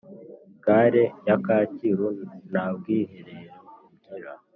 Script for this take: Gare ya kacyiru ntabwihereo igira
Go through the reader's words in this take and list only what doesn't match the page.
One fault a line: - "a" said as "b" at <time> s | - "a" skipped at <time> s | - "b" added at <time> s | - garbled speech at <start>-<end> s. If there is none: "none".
none